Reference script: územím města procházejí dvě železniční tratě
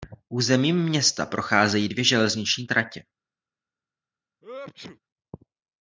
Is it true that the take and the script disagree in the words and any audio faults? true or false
true